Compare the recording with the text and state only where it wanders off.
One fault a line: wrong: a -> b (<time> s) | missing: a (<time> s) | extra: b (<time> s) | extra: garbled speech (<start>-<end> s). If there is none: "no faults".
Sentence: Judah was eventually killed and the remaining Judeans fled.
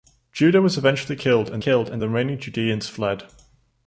extra: killed and (1.6 s)